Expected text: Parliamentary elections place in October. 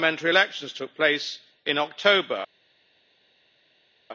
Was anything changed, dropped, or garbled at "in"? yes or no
no